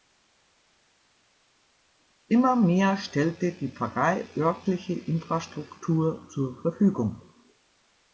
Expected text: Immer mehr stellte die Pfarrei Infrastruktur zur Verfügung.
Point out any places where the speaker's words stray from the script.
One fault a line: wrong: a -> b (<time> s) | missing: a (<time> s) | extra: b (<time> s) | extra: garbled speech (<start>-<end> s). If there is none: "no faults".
extra: örtliche (4.4 s)